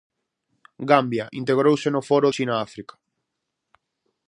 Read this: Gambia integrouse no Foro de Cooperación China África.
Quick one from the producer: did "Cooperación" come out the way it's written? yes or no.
no